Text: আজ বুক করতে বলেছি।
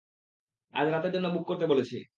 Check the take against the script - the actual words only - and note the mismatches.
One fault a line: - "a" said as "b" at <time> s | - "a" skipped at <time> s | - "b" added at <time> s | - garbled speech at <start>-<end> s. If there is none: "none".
- "রাতের জন্য" added at 0.9 s